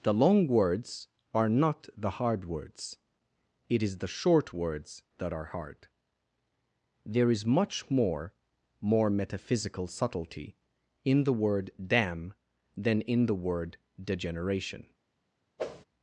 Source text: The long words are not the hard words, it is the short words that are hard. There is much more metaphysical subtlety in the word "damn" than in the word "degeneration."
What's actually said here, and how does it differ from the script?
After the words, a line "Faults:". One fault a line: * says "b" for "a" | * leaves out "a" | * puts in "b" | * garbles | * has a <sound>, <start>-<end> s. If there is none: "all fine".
The long words are not the hard words, it is the short words that are hard. There is much more more metaphysical subtlety in the word "damn" than in the word "degeneration."
Faults:
* puts in "more"
* has a whoosh, 15.6-15.8 s